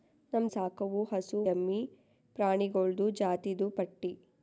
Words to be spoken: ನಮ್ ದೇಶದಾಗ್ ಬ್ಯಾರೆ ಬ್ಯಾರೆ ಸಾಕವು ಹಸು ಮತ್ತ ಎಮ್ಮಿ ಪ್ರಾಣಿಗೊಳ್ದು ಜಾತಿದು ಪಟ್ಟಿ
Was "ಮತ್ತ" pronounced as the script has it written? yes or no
no